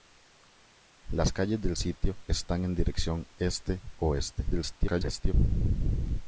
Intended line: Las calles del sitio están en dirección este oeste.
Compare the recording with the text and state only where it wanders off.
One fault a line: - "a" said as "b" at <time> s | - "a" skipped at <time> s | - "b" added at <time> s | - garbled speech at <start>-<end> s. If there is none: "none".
- garbled speech at 4.5-5.3 s